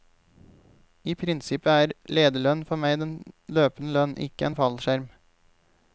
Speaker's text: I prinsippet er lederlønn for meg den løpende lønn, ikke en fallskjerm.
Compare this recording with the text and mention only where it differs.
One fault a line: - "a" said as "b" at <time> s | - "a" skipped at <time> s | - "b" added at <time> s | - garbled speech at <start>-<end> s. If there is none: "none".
none